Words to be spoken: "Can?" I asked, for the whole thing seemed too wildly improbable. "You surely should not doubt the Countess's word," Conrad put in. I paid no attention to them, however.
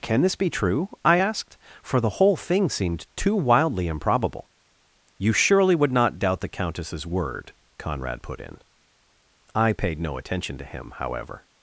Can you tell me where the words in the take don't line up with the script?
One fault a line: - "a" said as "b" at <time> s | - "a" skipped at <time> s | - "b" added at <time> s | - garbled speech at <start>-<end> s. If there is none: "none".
- "this be true" added at 0.2 s
- "should" said as "would" at 5.7 s
- "them" said as "him" at 10.6 s